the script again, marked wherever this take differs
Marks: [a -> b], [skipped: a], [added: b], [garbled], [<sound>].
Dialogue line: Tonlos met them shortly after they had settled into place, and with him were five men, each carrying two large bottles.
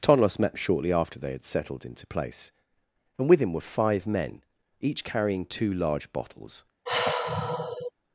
Tonlos met [skipped: them] shortly after they had settled into place, and with him were five men, each carrying two large bottles. [sigh]